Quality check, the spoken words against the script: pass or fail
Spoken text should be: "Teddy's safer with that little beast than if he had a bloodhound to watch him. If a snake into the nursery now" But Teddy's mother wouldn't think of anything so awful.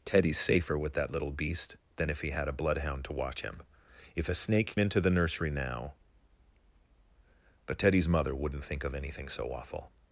pass